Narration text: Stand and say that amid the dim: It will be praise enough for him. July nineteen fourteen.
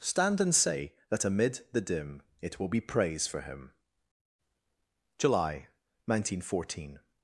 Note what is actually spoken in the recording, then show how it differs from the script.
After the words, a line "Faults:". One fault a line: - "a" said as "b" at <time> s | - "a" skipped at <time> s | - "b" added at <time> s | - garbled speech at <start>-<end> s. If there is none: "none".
Stand and say that amid the dim: It will be praise for him. July nineteen fourteen.
Faults:
- "enough" skipped at 3.3 s